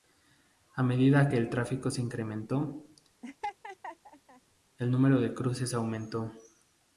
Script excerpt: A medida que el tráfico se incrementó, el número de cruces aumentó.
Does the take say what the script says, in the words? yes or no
yes